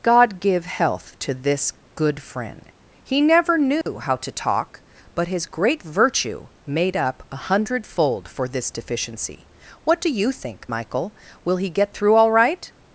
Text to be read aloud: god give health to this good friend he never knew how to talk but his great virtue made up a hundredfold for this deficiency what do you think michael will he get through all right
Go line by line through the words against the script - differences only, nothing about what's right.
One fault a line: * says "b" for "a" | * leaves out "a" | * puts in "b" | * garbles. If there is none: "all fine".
all fine